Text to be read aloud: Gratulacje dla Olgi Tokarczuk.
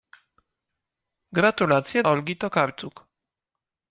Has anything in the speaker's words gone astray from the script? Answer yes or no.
yes